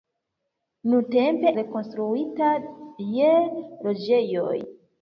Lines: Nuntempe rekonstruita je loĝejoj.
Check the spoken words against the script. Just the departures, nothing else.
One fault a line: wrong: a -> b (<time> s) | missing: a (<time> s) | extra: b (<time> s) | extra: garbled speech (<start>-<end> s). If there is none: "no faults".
no faults